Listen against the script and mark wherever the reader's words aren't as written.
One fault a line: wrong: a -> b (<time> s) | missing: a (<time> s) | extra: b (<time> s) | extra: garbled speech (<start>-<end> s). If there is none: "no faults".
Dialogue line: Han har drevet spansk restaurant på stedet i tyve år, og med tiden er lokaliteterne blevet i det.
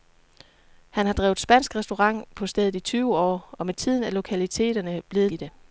no faults